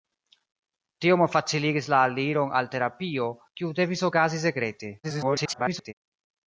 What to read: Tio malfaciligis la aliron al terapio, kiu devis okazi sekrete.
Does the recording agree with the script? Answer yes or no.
no